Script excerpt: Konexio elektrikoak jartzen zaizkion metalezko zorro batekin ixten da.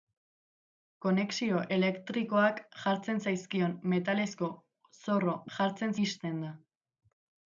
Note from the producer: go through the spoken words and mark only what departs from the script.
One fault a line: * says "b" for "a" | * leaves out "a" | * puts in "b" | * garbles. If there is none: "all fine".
* says "jartzen" for "batekin"